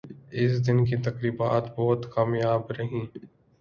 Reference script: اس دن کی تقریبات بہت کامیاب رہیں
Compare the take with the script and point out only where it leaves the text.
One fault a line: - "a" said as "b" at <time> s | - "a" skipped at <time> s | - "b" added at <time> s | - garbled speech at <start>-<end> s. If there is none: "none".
none